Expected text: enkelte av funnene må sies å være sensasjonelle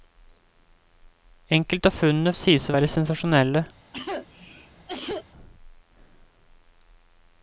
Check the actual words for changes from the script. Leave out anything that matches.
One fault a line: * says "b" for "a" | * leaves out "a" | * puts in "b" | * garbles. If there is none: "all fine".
all fine